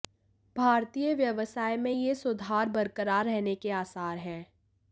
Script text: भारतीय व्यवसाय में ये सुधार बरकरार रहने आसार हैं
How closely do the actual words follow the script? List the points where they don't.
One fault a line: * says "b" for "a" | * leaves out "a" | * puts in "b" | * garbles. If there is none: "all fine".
* puts in "के"